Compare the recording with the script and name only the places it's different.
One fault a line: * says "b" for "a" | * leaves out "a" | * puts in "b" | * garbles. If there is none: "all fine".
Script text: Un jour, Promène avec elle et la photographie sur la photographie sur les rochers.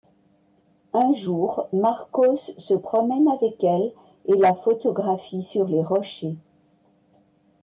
* puts in "Marcos se"
* leaves out "la photographie sur"